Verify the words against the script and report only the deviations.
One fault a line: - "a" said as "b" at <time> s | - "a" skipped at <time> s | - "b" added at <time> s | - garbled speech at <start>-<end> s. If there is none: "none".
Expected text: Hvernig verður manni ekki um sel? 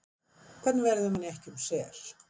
none